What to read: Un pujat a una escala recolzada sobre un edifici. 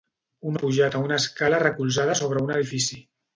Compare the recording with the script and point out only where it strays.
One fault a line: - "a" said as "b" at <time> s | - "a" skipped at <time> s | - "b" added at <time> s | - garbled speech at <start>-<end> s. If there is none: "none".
none